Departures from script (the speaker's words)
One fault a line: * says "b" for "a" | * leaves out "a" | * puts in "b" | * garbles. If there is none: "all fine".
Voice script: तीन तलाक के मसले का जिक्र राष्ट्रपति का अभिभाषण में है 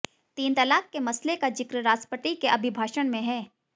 * says "के" for "का"